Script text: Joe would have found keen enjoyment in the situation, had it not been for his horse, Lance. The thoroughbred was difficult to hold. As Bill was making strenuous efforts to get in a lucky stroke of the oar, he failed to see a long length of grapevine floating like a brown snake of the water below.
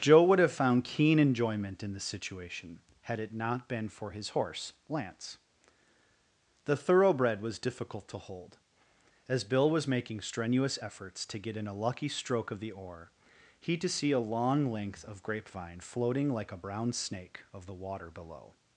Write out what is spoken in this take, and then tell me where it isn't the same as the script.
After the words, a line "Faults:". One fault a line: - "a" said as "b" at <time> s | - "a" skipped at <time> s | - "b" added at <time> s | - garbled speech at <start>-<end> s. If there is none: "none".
Joe would have found keen enjoyment in the situation, had it not been for his horse, Lance. The thoroughbred was difficult to hold. As Bill was making strenuous efforts to get in a lucky stroke of the oar, he to see a long length of grapevine floating like a brown snake of the water below.
Faults:
- "failed" skipped at 13.8 s